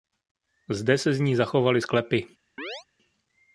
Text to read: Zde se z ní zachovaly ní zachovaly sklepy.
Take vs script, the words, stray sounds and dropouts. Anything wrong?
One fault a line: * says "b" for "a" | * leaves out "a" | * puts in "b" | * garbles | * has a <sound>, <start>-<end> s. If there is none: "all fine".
* leaves out "ní zachovaly"
* has a chirp, 2.6-2.8 s